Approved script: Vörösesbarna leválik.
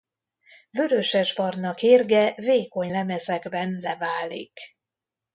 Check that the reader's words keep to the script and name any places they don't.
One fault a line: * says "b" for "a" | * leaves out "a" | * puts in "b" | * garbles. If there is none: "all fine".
* puts in "kérge vékony lemezekben"